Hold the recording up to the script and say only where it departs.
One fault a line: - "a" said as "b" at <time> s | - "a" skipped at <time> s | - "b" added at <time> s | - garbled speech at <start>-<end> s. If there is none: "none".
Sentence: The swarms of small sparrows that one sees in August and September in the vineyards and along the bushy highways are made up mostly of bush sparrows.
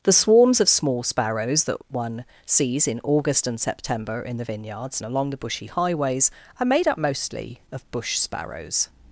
none